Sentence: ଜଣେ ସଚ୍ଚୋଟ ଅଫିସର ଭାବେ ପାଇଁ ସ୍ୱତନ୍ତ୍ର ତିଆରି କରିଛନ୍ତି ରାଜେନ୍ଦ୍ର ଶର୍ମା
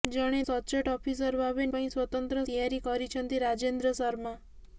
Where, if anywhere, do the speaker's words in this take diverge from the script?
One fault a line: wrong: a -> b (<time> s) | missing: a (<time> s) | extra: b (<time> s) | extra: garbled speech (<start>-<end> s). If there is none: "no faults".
no faults